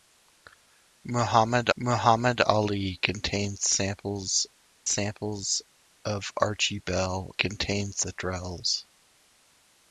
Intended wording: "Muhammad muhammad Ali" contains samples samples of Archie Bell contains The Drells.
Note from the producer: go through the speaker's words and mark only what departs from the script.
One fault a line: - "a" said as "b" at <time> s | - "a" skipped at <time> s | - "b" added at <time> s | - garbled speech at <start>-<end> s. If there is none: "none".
none